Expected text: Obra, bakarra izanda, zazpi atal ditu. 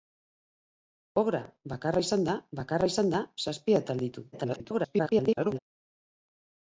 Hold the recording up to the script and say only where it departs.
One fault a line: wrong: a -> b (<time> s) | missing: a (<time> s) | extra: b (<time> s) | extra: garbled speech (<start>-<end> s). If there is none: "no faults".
extra: bakarra izanda (2.6 s)
extra: garbled speech (4.3-5.6 s)